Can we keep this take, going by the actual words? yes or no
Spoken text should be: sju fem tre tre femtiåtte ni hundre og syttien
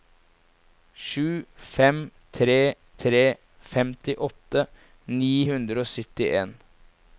yes